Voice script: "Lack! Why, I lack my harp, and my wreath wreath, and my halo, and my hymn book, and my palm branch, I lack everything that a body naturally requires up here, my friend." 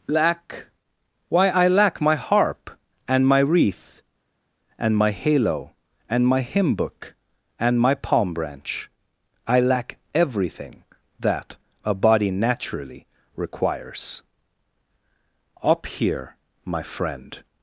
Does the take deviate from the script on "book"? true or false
false